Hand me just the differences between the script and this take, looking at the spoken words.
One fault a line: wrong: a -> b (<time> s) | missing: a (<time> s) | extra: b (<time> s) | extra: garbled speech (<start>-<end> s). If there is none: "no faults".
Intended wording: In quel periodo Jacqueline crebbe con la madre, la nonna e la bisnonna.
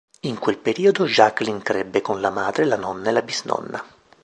no faults